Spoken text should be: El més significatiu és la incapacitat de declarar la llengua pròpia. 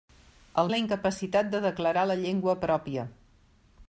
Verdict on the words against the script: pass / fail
fail